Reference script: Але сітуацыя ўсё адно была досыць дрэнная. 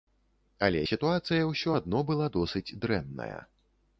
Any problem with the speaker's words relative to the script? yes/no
no